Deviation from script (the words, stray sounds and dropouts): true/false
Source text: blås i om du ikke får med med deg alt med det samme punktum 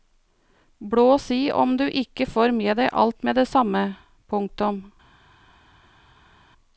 true